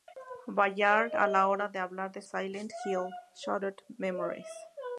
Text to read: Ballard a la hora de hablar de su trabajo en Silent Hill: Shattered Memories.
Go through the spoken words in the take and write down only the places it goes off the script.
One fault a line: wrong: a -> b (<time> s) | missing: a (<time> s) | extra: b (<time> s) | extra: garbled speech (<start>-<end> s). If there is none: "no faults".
missing: su trabajo en (2.2 s)